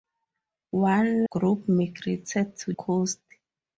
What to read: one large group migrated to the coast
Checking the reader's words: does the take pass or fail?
fail